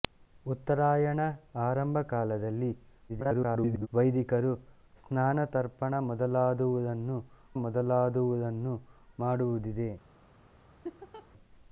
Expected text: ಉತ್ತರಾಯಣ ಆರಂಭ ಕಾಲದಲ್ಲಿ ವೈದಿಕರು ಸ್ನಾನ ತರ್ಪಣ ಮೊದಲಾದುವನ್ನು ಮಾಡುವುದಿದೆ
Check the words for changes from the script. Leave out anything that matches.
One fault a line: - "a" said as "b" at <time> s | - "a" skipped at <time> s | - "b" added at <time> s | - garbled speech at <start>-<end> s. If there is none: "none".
- garbled speech at 3.1-3.9 s
- "ಮೊದಲಾದುವನ್ನು" added at 7.6 s